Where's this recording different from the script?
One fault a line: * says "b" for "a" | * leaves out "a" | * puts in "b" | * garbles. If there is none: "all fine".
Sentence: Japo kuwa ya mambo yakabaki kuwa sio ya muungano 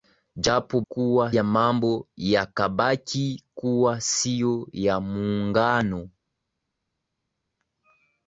all fine